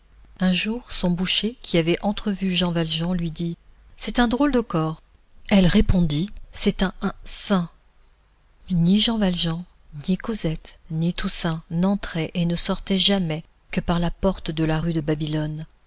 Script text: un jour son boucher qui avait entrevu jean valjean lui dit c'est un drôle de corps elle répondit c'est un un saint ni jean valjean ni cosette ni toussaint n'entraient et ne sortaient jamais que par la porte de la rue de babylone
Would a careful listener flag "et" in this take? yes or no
no